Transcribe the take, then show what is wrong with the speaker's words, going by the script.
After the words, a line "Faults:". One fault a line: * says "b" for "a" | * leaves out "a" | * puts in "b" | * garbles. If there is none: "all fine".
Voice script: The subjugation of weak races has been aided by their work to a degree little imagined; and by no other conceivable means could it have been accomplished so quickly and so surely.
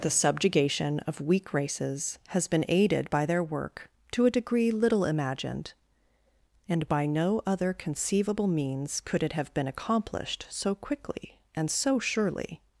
The subjugation of weak races has been aided by their work to a degree little imagined; and by no other conceivable means could it have been accomplished so quickly and so surely.
Faults:
all fine